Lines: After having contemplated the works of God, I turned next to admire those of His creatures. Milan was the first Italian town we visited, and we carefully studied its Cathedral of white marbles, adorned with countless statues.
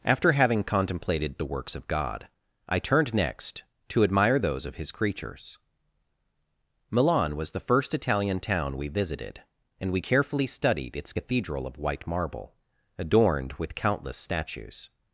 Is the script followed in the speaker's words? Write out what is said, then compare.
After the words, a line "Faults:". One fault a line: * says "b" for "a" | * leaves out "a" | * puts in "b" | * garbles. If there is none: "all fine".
After having contemplated the works of God, I turned next to admire those of His creatures. Milan was the first Italian town we visited, and we carefully studied its Cathedral of white marble, adorned with countless statues.
Faults:
* says "marble" for "marbles"